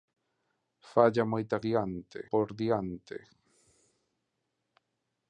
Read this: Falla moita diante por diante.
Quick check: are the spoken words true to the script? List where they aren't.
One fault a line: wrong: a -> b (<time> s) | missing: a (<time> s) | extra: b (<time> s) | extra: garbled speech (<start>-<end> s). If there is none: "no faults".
no faults